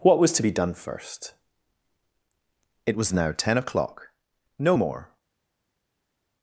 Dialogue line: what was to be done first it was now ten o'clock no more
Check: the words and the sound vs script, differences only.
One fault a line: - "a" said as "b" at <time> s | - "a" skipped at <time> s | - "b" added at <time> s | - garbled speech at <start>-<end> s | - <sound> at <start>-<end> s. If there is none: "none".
none